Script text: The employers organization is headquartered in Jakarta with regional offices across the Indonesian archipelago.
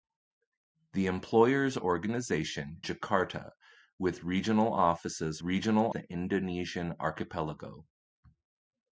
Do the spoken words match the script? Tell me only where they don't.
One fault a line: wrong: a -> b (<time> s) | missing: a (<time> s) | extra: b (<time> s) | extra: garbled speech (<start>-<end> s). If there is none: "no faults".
missing: is headquartered in (2.8 s)
wrong: across -> regional (5.4 s)